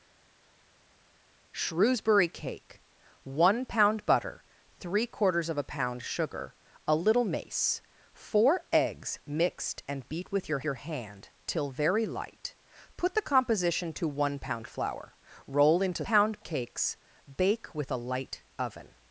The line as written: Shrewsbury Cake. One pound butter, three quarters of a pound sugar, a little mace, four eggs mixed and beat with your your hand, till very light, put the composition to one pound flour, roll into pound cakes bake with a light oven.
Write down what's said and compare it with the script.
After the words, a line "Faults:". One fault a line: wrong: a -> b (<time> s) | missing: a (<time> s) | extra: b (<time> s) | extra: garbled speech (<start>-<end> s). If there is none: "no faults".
Shrewsbury Cake. One pound butter, three quarters of a pound sugar, a little mace, four eggs mixed and beat with your your hand, till very light, put the composition to one pound flour, roll into pound cakes bake with a light oven.
Faults:
no faults